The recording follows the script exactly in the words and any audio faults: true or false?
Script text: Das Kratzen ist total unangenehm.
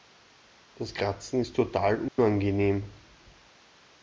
false